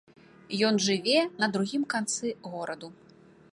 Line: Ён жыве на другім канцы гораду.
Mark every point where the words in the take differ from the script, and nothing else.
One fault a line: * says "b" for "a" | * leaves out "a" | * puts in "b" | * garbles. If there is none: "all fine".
all fine